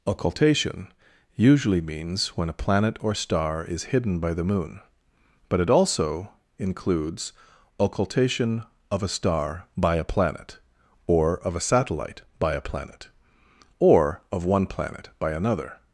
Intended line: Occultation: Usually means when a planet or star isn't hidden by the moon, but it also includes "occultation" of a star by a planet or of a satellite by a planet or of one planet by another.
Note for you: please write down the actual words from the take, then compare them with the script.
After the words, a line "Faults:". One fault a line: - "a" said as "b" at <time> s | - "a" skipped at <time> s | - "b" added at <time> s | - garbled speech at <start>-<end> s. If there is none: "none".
Occultation: Usually means when a planet or star is hidden by the moon, but it also includes "occultation" of a star by a planet or of a satellite by a planet or of one planet by another.
Faults:
- "isn't" said as "is" at 3.6 s